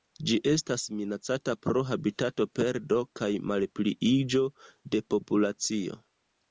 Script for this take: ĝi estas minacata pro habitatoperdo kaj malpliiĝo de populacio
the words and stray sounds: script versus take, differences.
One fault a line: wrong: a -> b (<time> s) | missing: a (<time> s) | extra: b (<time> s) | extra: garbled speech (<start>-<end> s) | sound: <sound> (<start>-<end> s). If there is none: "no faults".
no faults